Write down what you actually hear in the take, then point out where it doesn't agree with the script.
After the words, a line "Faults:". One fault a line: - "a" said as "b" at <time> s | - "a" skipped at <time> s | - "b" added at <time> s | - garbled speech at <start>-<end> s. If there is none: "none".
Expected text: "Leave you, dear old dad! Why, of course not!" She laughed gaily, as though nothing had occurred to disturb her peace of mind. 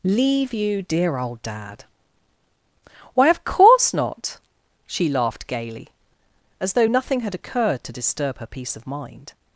"Leave you, dear old dad! Why, of course not!" She laughed gaily, as though nothing had occurred to disturb her peace of mind.
Faults:
none